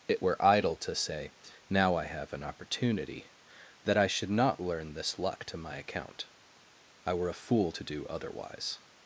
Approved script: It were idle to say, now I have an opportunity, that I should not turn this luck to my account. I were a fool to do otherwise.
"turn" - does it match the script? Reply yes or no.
no